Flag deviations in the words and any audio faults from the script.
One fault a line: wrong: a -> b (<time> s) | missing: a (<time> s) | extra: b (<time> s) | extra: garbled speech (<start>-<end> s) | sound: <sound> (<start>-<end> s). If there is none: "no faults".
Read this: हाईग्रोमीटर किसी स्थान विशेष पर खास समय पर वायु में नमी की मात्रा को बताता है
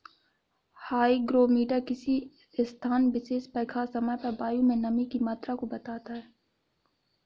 no faults